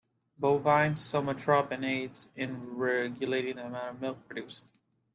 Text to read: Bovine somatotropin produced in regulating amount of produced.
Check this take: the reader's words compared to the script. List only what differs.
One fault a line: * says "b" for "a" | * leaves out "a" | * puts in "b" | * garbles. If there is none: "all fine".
* says "aids" for "produced"
* puts in "the"
* puts in "milk"